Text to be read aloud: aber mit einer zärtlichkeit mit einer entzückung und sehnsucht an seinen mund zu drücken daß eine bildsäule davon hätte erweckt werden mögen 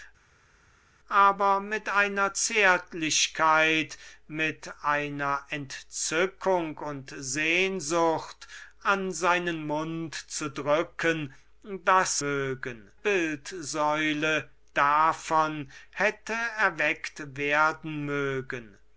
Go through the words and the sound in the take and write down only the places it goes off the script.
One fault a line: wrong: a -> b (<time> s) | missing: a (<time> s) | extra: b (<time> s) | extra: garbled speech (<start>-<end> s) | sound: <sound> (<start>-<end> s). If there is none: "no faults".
wrong: eine -> mögen (12.2 s)